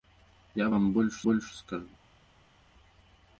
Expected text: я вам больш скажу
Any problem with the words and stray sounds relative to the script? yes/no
yes